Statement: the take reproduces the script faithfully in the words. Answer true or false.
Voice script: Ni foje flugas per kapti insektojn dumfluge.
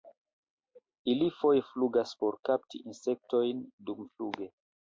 false